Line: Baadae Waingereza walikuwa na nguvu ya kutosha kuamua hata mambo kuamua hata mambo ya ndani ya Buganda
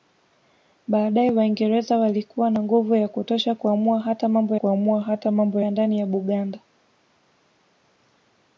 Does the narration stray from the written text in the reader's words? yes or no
no